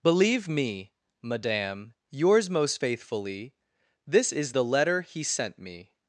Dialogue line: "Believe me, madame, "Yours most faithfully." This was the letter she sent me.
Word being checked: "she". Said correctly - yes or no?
no